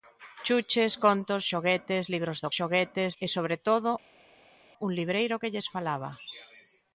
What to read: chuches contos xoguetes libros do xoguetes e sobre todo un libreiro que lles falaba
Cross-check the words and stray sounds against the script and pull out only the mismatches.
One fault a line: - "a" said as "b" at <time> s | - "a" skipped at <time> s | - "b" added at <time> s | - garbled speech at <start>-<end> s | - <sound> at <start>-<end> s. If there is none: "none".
none